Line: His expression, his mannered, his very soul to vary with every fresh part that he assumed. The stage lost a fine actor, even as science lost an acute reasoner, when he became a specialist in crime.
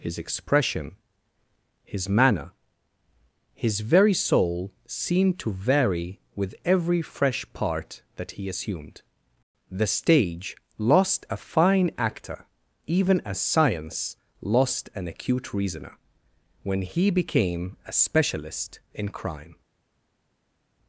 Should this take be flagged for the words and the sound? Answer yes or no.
yes